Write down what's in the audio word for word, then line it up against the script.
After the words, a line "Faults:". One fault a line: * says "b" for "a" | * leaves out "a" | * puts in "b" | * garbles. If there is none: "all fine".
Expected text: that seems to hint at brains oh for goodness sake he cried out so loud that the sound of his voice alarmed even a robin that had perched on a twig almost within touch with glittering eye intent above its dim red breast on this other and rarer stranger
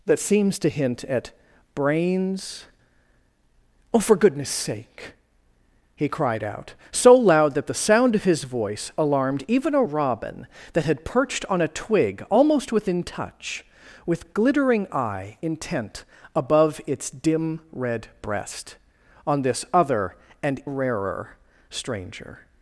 that seems to hint at brains oh for goodness sake he cried out so loud that the sound of his voice alarmed even a robin that had perched on a twig almost within touch with glittering eye intent above its dim red breast on this other and rarer stranger
Faults:
all fine